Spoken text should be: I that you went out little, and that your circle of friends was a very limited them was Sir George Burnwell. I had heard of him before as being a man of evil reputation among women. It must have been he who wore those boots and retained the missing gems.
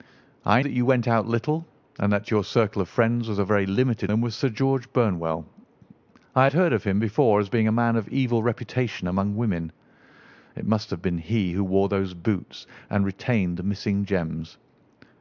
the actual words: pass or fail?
pass